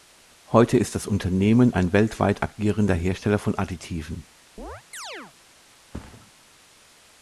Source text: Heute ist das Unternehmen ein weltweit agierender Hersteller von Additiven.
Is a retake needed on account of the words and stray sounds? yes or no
yes